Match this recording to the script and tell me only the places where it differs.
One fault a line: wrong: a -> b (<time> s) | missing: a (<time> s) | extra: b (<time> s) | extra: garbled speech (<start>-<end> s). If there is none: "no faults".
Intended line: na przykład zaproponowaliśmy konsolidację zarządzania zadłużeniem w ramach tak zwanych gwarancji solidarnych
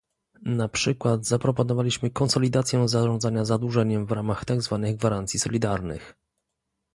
no faults